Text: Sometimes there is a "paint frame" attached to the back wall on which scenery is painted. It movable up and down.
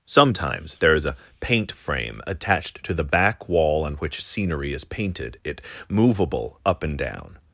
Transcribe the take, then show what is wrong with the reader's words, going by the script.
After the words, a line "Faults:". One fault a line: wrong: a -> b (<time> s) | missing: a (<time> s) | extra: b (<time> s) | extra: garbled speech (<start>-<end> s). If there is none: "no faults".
Sometimes there is a "paint frame" attached to the back wall on which scenery is painted. It movable up and down.
Faults:
no faults